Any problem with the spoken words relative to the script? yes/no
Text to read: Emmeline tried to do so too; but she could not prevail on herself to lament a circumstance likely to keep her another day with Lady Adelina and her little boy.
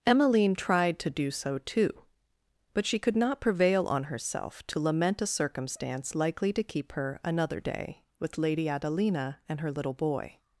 no